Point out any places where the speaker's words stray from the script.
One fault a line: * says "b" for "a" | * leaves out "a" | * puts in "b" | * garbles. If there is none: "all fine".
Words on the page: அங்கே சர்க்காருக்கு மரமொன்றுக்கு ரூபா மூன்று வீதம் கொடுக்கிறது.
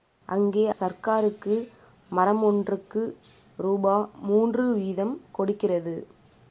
all fine